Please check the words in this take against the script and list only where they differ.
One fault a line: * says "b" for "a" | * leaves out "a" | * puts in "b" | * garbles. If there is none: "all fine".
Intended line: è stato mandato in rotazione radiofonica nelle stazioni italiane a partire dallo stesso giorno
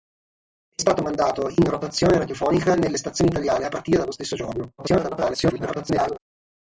* garbles